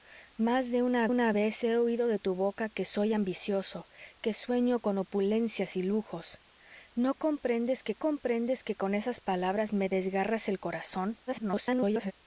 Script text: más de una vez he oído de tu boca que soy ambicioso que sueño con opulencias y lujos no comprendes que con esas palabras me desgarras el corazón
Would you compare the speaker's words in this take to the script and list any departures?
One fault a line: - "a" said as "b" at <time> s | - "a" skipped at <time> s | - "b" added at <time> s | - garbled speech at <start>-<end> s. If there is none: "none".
- "una" added at 1.1 s
- "comprendes que" added at 7.9 s
- garbled speech at 11.3-12.1 s